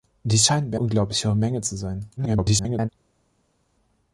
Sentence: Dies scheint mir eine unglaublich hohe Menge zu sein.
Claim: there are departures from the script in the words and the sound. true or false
true